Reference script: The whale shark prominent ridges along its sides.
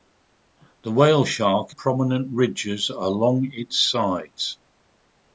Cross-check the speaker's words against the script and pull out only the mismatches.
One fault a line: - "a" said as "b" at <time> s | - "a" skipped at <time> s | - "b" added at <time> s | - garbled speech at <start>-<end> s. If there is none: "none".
none